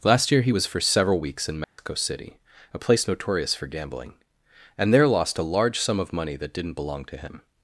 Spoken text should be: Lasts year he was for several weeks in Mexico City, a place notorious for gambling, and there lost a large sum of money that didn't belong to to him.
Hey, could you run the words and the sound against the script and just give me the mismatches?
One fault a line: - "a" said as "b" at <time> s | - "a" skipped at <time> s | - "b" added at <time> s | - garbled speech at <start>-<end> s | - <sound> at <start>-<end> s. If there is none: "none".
- "Lasts" said as "Last" at 0.0 s
- dropout at 1.6-1.8 s
- "to" skipped at 7.2 s